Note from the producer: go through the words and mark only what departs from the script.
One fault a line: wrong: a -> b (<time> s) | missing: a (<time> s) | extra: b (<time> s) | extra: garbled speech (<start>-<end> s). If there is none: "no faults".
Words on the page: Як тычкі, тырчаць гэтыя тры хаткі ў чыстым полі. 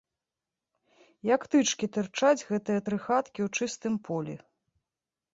no faults